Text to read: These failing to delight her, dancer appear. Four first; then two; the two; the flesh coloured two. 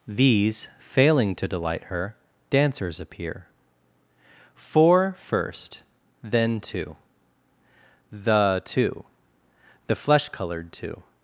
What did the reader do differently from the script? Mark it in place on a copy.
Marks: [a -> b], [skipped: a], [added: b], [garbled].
These failing to delight her, [dancer -> dancers] appear. Four first; then two; the two; the flesh coloured two.